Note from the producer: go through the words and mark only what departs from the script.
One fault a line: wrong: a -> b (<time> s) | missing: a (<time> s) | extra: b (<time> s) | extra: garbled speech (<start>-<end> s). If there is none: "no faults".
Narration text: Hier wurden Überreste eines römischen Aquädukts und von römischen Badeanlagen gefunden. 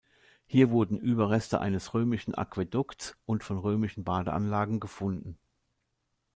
no faults